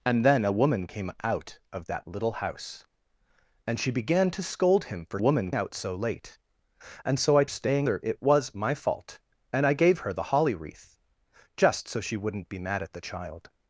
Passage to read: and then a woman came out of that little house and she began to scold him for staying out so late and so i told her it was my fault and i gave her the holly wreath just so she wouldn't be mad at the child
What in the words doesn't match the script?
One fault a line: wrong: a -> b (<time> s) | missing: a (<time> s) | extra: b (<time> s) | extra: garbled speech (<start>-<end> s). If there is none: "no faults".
wrong: staying -> woman (5.2 s)
wrong: told -> staying (7.5 s)